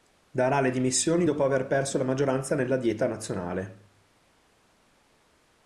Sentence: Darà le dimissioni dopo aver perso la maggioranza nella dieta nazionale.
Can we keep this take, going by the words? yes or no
yes